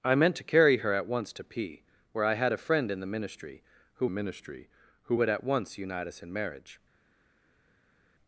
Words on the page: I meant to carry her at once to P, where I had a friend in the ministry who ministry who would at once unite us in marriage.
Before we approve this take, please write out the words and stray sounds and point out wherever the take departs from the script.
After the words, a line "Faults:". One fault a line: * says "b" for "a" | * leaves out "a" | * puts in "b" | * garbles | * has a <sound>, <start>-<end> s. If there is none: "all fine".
I meant to carry her at once to P, where I had a friend in the ministry who ministry who would at once unite us in marriage.
Faults:
all fine